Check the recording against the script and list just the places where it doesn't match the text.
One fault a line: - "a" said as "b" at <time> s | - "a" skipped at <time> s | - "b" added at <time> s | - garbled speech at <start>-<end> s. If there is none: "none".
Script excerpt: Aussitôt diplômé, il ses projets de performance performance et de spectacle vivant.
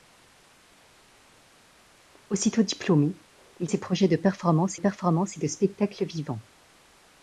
none